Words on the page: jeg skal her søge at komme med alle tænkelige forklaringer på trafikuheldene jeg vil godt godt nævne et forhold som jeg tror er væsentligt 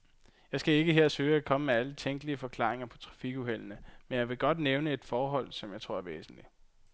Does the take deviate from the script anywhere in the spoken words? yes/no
yes